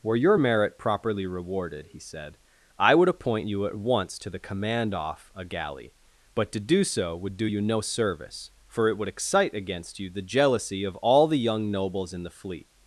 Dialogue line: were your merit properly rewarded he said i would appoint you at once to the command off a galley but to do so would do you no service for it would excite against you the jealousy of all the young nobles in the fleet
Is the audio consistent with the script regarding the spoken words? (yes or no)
yes